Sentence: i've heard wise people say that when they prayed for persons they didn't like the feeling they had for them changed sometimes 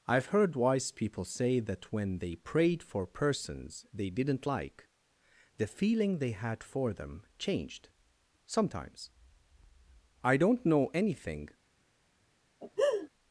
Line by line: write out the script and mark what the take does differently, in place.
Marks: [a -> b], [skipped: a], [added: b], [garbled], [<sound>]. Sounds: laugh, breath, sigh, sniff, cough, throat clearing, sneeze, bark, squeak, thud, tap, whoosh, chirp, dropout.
i've heard wise people say that when they prayed for persons they didn't like the feeling they had for them changed sometimes [added: i don't know anything] [laugh]